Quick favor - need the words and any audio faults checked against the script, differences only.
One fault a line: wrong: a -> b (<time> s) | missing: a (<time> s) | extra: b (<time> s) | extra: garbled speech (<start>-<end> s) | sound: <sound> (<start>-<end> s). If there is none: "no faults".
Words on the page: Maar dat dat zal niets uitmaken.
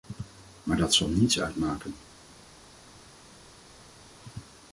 missing: dat (0.9 s)